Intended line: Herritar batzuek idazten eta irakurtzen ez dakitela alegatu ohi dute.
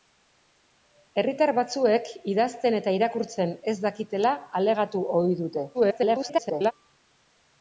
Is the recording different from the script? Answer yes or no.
yes